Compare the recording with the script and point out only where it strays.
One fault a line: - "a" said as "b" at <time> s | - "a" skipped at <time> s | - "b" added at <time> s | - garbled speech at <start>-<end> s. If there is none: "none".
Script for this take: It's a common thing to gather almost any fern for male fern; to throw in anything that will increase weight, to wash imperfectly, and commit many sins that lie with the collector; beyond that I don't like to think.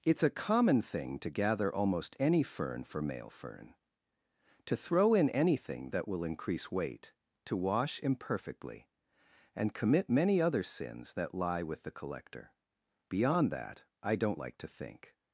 - "other" added at 10.4 s